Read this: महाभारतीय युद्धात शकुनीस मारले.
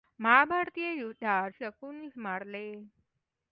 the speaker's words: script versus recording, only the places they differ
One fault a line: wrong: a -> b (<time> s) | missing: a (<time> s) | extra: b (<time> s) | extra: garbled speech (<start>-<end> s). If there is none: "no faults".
no faults